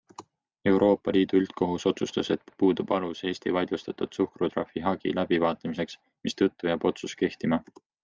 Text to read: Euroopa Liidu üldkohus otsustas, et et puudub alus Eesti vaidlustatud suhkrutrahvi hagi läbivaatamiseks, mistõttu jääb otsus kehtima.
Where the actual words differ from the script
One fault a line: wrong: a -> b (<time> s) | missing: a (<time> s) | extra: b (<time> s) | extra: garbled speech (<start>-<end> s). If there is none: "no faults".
no faults